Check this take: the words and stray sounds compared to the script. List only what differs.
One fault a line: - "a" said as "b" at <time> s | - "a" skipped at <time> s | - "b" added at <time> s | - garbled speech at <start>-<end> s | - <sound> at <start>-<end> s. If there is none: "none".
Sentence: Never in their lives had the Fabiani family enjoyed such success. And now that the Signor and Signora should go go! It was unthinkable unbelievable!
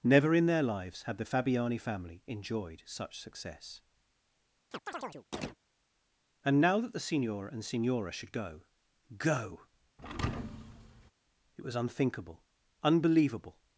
- chirp at 4.7-5.6 s
- thud at 10.0-11.1 s